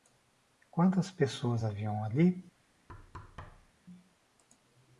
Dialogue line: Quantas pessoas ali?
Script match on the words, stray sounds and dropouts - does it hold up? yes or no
no